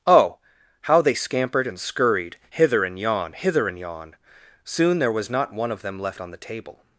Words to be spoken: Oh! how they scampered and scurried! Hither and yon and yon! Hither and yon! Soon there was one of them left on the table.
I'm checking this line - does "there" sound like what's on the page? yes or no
yes